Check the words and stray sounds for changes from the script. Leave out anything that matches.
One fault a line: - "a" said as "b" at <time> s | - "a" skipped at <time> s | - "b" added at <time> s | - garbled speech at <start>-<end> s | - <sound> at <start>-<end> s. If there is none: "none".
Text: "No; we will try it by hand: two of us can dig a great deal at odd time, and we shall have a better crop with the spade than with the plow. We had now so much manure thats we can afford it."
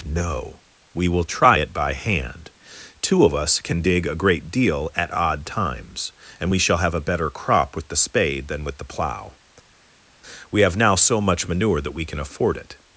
- "time" said as "times" at 5.5 s
- "had" said as "have" at 10.6 s
- "thats" said as "that" at 11.8 s